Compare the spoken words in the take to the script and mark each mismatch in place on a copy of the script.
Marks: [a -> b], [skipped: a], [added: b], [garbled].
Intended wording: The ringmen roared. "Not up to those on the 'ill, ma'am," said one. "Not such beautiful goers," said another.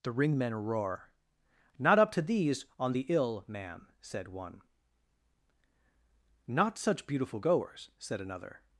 The ringmen [roared. -> roar] "Not up to [those -> these] on the 'ill, ma'am," said one. "Not such beautiful goers," said another.